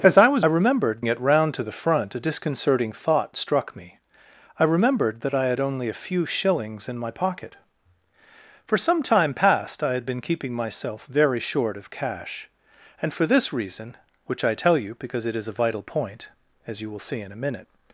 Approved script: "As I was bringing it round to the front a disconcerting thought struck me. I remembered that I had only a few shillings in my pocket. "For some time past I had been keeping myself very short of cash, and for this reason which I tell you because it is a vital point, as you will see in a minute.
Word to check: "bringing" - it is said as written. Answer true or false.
false